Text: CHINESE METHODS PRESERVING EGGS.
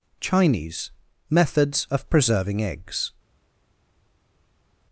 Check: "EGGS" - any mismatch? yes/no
no